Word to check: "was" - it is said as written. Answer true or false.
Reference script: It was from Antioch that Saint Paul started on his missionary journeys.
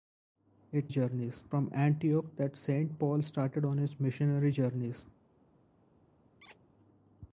false